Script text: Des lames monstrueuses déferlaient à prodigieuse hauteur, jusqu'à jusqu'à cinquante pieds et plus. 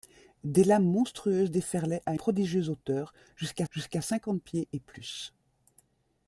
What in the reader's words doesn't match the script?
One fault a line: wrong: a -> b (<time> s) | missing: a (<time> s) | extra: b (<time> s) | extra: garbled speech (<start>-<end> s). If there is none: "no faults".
no faults